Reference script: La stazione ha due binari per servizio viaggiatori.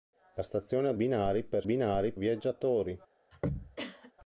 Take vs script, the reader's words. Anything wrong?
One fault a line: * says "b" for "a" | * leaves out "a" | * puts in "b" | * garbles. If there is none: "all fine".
* leaves out "due"
* says "binari" for "servizio"